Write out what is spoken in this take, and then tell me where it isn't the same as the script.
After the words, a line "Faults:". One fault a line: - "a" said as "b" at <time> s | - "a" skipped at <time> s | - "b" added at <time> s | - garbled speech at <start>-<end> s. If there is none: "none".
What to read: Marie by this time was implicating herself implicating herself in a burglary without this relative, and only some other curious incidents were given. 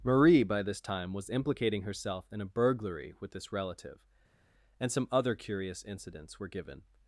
Marie by this time was implicating herself in a burglary with this relative, and some other curious incidents were given.
Faults:
- "implicating herself" skipped at 2.2 s
- "without" said as "with" at 3.2 s
- "only" skipped at 4.9 s